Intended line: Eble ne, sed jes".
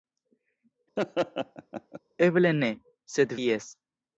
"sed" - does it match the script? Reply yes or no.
yes